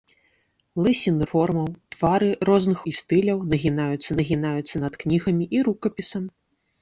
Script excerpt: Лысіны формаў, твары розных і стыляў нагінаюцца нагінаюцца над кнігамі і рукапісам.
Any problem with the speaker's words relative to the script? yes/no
no